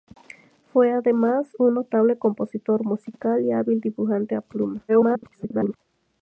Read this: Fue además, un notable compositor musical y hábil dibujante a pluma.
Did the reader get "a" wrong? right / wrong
right